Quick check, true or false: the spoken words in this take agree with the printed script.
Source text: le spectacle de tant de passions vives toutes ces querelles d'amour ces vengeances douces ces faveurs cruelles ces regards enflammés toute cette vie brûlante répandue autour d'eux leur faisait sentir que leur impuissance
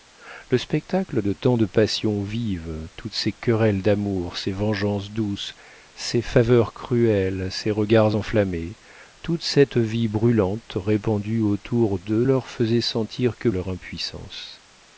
true